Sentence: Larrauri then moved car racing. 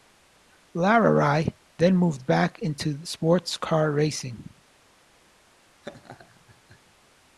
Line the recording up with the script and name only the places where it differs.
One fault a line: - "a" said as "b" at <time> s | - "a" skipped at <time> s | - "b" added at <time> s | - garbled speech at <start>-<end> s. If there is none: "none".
- "back into sports" added at 2.2 s